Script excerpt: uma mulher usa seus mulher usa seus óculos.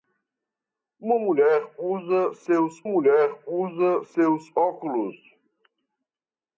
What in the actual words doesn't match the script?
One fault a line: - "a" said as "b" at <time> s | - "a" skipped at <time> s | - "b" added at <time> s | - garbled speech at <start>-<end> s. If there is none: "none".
none